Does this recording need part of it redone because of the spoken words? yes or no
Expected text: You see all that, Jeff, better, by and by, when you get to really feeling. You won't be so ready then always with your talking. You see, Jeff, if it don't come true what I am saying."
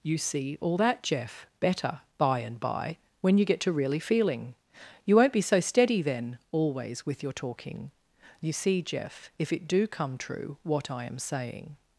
yes